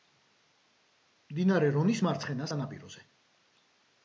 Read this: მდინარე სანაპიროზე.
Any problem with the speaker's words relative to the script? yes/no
yes